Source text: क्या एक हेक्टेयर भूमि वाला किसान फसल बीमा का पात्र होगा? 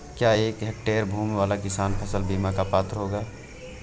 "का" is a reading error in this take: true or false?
false